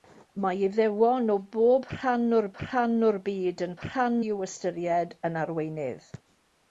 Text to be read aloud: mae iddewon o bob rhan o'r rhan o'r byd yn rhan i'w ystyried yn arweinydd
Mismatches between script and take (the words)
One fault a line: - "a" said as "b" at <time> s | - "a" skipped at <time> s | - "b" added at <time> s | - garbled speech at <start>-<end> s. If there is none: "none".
none